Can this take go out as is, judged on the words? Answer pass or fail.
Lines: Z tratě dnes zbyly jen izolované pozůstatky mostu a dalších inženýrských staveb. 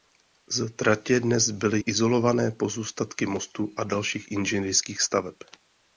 fail